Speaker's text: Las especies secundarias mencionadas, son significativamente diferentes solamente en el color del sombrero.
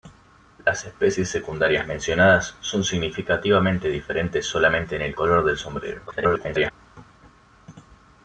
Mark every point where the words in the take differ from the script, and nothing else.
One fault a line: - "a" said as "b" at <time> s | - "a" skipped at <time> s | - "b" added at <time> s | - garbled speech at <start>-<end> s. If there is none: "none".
- garbled speech at 6.1-6.7 s